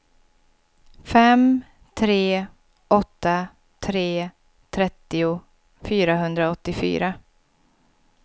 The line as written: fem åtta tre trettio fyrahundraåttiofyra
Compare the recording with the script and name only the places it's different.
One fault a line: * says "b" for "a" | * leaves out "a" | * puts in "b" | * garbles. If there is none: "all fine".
* puts in "tre"